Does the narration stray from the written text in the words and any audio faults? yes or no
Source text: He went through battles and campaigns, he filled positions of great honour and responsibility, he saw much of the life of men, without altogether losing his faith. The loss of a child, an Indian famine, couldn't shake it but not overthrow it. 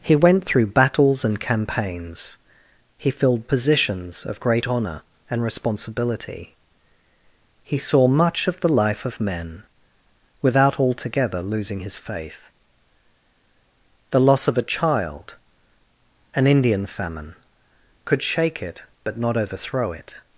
yes